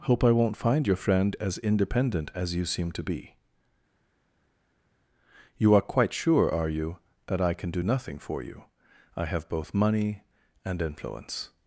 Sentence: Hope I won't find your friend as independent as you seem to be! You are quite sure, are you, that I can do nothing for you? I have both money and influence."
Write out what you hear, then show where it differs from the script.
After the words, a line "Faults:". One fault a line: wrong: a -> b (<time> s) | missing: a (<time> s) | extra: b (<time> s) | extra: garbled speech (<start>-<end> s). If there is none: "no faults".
Hope I won't find your friend as independent as you seem to be! You are quite sure, are you, that I can do nothing for you? I have both money and influence."
Faults:
no faults